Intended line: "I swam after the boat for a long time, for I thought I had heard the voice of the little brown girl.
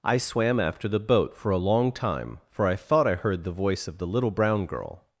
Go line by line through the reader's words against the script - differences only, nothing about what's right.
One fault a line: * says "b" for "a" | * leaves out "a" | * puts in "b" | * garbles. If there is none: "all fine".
* leaves out "had"